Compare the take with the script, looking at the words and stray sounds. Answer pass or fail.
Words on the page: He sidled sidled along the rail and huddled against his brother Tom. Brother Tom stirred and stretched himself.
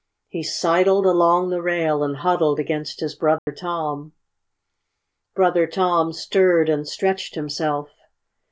fail